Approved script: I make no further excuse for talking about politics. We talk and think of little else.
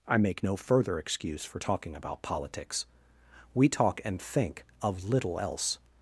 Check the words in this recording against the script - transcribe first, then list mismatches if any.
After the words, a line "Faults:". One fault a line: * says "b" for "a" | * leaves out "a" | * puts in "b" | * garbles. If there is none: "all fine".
I make no further excuse for talking about politics. We talk and think of little else.
Faults:
all fine